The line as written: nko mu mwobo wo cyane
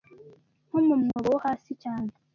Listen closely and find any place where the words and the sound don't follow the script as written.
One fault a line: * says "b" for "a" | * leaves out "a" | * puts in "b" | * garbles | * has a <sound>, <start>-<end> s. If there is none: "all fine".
* has a dropout, 1.1-1.2 s
* puts in "hasi"